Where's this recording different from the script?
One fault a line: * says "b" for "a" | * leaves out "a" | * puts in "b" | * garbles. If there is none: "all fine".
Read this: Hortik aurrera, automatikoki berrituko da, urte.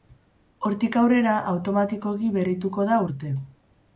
all fine